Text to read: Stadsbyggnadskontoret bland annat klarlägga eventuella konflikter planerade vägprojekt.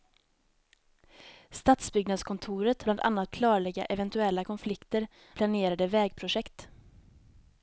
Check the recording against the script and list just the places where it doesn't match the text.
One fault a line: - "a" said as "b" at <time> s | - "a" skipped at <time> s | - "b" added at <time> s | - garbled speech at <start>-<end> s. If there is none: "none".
none